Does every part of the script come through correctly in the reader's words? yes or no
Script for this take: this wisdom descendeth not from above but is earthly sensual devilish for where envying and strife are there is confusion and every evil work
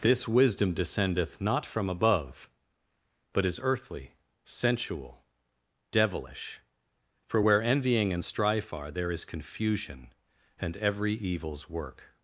no